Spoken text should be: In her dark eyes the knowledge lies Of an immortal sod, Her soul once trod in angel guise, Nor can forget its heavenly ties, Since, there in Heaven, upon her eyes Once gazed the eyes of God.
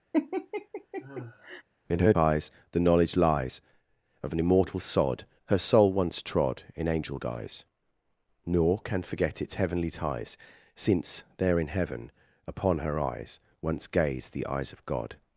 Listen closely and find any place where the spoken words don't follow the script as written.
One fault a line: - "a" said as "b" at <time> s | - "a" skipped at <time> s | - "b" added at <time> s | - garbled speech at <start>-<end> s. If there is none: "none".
- "dark" skipped at 2.1 s